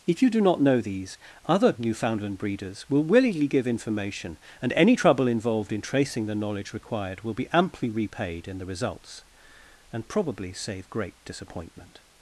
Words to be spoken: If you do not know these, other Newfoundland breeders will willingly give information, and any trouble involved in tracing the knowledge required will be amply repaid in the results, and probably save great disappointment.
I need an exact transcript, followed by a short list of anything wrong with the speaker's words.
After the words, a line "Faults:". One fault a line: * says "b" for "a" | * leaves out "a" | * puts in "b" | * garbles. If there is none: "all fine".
If you do not know these, other Newfoundland breeders will willingly give information, and any trouble involved in tracing the knowledge required will be amply repaid in the results, and probably save great disappointment.
Faults:
all fine